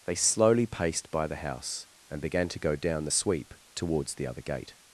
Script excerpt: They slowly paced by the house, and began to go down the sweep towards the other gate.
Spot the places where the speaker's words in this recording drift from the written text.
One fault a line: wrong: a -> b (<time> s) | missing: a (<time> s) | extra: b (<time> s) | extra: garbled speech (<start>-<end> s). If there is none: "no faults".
no faults